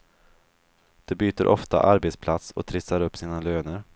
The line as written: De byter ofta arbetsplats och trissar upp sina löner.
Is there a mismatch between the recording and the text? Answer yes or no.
no